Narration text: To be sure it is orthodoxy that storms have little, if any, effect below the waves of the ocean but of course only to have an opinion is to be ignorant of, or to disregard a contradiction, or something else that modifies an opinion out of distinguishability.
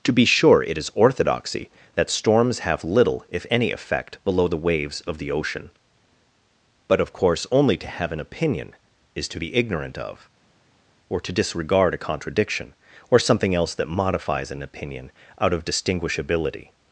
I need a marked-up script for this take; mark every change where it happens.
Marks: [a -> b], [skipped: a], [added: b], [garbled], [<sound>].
To be sure it is orthodoxy that storms have little, if any, effect below the waves of the ocean but of course only to have an opinion is to be ignorant of, or to disregard a contradiction, or something else that modifies an opinion out of distinguishability.